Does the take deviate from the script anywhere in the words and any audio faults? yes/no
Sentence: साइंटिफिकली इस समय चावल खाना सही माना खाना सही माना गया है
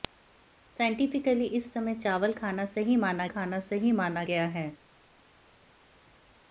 no